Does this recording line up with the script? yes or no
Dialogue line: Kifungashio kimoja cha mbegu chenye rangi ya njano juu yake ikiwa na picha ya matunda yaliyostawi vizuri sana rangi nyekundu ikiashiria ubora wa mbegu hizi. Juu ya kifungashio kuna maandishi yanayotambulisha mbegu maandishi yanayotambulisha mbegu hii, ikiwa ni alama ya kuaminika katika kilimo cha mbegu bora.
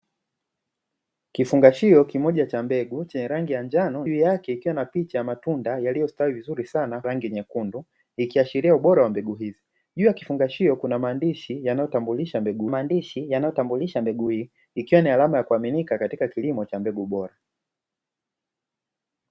yes